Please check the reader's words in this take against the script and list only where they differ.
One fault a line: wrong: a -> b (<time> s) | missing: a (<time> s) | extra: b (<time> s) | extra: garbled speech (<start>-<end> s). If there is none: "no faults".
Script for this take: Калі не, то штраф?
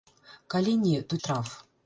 no faults